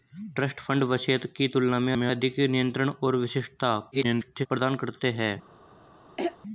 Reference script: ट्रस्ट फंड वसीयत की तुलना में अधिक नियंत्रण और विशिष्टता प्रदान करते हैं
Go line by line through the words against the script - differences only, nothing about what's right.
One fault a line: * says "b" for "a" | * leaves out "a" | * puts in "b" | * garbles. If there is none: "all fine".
* puts in "में"
* garbles